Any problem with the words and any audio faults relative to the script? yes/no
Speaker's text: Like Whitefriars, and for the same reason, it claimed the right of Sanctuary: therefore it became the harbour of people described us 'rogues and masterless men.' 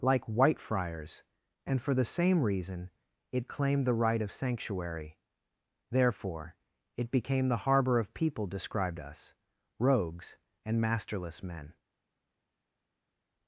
no